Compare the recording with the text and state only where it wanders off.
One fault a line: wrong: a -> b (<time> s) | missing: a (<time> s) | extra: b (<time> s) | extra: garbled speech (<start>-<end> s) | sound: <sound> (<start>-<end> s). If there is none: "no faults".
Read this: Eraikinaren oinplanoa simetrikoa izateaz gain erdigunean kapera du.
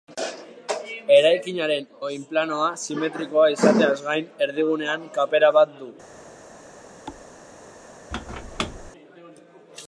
extra: bat (5.6 s)
sound: thud (7.1-7.3 s)
sound: squeak (8.1-8.9 s)